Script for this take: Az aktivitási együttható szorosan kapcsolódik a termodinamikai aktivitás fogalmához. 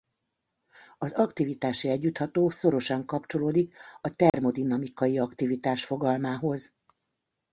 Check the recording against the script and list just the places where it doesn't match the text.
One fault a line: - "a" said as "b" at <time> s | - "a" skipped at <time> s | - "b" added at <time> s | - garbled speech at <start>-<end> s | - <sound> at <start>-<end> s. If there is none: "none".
- dropout at 4.3-4.3 s